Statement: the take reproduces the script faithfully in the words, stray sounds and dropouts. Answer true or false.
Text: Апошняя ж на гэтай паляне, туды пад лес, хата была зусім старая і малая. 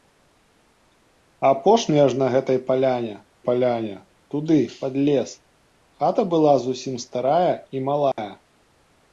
false